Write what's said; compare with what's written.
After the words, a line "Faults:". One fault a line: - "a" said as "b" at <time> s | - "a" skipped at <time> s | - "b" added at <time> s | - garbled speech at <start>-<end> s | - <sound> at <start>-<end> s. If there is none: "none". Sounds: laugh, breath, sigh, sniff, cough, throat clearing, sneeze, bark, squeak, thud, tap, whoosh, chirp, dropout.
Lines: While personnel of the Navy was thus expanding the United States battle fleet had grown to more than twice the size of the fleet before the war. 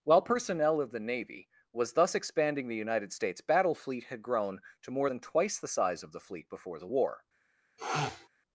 While personnel of the Navy was thus expanding the United States battle fleet had grown to more than twice the size of the fleet before the war.
Faults:
- sniff at 7.8-8.3 s